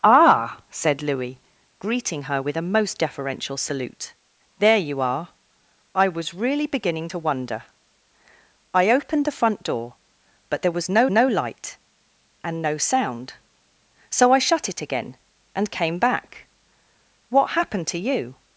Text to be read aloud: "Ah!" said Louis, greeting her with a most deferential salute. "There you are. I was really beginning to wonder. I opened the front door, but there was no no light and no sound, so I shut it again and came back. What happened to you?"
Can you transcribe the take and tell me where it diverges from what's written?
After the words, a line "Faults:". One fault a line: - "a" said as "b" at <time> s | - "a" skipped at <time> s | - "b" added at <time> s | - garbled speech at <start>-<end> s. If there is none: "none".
"Ah!" said Louis, greeting her with a most deferential salute. "There you are. I was really beginning to wonder. I opened the front door, but there was no no light and no sound, so I shut it again and came back. What happened to you?"
Faults:
none